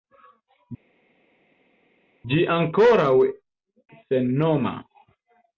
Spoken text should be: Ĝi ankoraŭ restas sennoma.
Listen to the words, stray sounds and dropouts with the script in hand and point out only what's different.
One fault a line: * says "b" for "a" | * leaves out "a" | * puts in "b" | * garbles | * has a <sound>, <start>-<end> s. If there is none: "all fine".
* leaves out "restas"